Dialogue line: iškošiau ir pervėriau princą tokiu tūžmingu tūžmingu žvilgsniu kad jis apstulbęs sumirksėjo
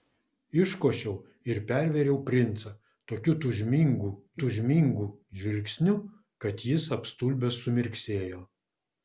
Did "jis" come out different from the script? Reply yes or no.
no